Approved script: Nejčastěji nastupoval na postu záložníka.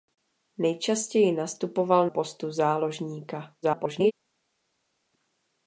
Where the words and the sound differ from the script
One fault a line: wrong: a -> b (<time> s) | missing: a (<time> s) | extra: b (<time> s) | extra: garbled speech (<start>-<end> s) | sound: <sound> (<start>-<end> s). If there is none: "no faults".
missing: na (2.1 s)
extra: garbled speech (3.6-4.1 s)